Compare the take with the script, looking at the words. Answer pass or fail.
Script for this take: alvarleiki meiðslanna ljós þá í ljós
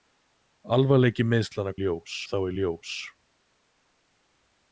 pass